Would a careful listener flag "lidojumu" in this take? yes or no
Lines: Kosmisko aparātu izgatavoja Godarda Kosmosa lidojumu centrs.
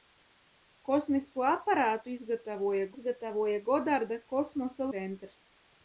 yes